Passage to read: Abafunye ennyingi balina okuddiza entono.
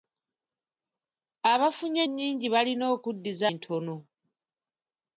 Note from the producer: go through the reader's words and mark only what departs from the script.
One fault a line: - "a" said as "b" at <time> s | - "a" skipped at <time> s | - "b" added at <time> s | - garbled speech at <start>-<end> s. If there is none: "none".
none